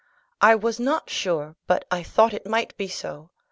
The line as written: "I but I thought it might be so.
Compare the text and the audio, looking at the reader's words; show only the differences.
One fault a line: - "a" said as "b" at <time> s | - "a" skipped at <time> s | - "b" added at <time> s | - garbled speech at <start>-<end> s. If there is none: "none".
- "was not sure" added at 0.6 s